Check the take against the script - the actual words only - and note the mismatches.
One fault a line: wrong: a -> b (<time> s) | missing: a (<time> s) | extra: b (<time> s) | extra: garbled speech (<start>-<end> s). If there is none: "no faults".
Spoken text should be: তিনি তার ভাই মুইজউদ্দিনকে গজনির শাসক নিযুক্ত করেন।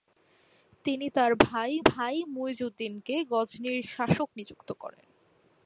extra: ভাই (1.8 s)